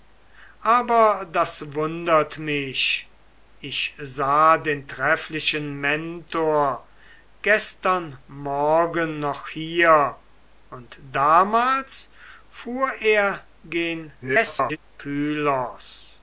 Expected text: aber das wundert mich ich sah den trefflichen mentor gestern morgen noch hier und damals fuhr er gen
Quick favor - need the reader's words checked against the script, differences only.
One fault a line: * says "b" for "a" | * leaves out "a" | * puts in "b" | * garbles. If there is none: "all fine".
* garbles